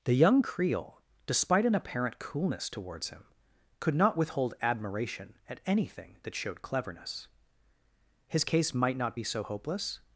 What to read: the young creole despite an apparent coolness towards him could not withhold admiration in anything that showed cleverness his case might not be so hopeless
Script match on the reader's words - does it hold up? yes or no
no